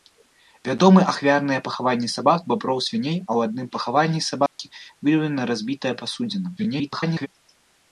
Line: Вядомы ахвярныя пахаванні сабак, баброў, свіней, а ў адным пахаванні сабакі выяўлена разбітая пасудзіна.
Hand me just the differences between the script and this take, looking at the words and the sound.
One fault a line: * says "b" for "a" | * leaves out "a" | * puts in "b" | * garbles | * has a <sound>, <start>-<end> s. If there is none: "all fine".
* has a dropout, 4.5-4.6 s
* garbles